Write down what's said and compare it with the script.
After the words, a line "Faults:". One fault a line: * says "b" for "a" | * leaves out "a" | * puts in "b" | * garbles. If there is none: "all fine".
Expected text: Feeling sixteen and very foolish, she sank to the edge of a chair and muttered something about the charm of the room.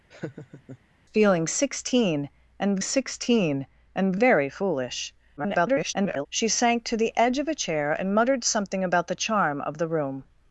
Feeling sixteen and sixteen and very foolish, [garbled] she sank to the edge of a chair and muttered something about the charm of the room.
Faults:
* puts in "sixteen and"
* garbles